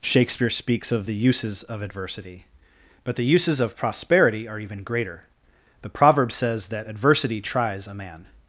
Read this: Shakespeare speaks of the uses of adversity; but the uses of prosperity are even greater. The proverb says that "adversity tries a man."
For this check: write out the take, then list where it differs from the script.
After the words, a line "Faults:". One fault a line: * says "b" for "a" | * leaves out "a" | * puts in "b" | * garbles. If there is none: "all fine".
Shakespeare speaks of the uses of adversity; but the uses of prosperity are even greater. The proverb says that "adversity tries a man."
Faults:
all fine